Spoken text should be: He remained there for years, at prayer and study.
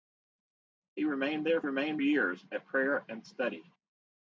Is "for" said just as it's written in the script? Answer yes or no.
no